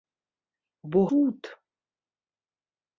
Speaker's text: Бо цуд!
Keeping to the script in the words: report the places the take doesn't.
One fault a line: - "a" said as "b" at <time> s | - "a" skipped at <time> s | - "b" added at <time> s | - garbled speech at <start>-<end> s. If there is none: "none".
none